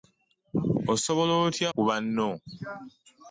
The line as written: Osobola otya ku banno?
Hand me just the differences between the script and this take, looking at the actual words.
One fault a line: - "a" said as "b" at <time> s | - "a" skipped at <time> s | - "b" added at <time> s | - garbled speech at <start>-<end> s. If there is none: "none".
none